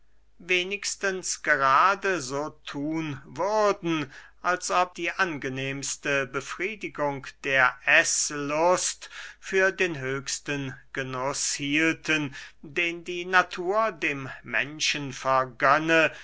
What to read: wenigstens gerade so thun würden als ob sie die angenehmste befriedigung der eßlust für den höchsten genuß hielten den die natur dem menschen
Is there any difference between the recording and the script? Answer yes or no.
yes